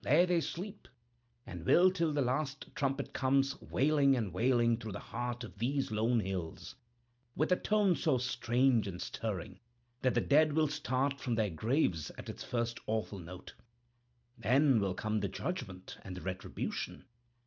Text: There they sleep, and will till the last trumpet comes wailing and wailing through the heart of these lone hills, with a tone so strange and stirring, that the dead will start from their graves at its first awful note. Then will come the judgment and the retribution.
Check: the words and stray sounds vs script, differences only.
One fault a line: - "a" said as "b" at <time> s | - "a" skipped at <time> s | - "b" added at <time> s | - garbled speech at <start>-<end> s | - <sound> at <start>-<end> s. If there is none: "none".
none